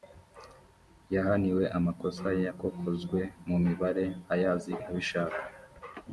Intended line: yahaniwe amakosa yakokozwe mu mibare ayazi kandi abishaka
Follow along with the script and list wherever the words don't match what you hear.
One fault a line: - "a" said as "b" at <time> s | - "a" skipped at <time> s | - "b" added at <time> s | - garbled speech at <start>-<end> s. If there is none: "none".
- "kandi" skipped at 4.7 s